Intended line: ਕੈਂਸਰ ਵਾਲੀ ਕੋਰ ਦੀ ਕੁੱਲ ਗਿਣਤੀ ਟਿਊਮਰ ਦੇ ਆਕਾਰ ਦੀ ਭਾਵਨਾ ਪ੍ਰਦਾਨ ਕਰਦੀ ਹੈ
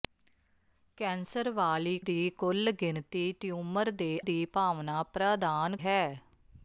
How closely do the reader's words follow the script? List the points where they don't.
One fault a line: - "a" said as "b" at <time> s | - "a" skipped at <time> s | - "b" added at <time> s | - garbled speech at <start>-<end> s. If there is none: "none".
- "ਕੋਰ" skipped at 2.0 s
- "ਆਕਾਰ" skipped at 4.2 s
- "ਕਰਦੀ" skipped at 5.8 s